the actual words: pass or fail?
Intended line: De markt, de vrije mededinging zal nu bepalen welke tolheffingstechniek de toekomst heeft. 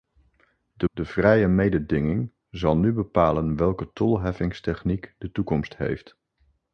fail